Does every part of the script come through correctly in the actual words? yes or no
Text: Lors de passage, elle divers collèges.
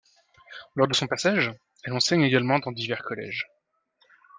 no